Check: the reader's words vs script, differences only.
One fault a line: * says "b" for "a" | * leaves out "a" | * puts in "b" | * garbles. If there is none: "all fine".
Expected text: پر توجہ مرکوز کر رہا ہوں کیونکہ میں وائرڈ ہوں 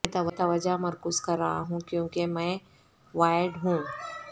* says "میں" for "پر"